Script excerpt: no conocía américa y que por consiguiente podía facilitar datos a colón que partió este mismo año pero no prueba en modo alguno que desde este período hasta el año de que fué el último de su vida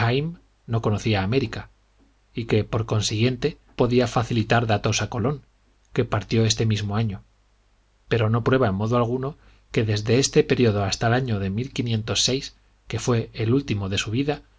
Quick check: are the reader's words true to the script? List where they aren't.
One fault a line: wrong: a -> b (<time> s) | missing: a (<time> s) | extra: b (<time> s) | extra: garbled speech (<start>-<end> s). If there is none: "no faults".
no faults